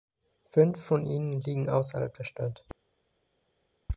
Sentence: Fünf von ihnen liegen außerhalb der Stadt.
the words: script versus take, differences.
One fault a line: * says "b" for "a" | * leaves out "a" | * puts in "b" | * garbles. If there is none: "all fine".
all fine